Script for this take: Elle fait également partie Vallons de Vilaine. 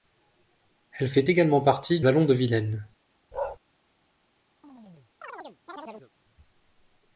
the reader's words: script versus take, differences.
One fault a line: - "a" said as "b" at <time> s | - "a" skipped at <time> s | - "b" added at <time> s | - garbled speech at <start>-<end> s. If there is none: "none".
none